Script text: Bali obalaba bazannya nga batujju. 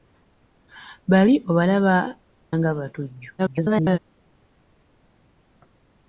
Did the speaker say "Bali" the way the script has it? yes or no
yes